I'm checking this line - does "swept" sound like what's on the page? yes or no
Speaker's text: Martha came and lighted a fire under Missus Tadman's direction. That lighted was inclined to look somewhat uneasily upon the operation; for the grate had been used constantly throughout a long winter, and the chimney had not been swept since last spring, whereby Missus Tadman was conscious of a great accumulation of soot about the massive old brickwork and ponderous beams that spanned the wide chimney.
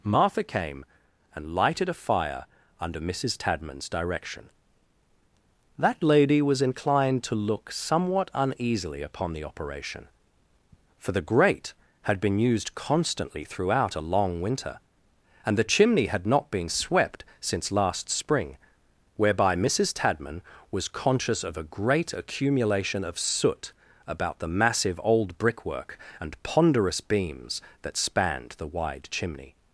yes